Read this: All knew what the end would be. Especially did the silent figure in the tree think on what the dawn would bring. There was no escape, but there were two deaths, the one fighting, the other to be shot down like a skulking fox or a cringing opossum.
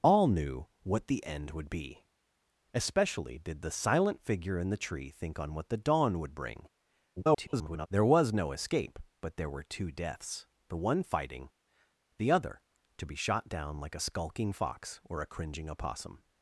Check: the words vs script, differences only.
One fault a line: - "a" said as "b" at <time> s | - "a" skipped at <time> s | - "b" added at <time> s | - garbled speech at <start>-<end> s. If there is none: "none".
- garbled speech at 7.2-7.9 s